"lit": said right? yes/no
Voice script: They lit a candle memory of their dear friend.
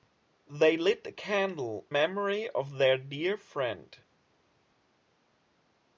yes